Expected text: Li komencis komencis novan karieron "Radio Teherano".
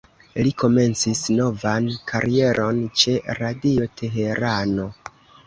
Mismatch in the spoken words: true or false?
true